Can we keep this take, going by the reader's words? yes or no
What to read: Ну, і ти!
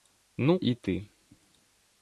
yes